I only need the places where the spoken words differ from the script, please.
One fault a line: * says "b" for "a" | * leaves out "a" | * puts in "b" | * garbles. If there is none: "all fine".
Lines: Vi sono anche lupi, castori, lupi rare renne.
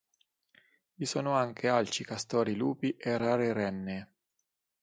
* says "alci" for "lupi"
* puts in "e"